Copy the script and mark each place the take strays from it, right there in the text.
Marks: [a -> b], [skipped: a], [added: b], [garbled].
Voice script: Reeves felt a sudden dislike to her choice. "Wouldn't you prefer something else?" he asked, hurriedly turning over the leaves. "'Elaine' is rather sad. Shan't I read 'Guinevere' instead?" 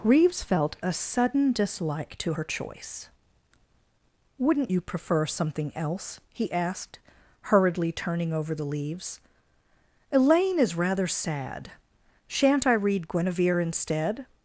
Reeves felt a sudden dislike to her choice. "Wouldn't you prefer something else?" he asked, hurriedly turning over the leaves. "'Elaine' is rather sad. Shan't I read 'Guinevere' instead?"